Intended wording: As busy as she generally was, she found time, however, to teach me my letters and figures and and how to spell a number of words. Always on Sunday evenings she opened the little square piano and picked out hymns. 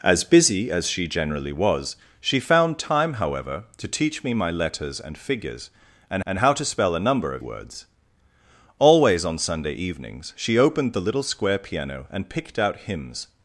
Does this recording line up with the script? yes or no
yes